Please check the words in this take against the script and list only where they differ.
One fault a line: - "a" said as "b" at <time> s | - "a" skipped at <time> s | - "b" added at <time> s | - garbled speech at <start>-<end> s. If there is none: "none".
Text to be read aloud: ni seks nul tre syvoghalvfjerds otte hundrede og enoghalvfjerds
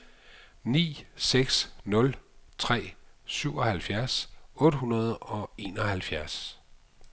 none